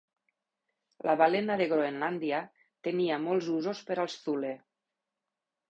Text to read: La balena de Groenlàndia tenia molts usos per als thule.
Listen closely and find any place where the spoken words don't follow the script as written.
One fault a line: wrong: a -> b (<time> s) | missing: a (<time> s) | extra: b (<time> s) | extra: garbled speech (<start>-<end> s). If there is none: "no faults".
no faults